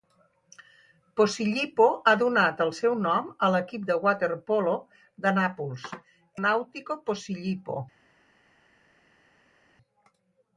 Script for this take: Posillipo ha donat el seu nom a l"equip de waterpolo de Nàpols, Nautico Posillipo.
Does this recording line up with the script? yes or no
yes